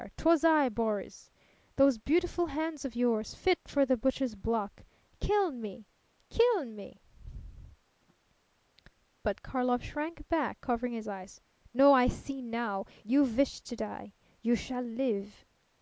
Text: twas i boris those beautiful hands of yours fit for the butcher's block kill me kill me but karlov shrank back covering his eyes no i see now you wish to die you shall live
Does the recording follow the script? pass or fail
pass